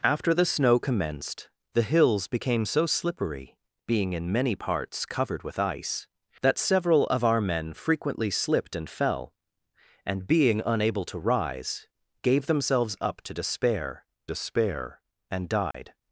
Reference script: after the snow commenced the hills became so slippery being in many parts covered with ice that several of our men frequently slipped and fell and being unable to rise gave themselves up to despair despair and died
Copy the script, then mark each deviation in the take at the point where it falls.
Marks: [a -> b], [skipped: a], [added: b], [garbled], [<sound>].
after the snow commenced the hills became so slippery being in many parts covered with ice that several of our men frequently slipped and fell and being unable to rise gave themselves up to despair despair and died [dropout]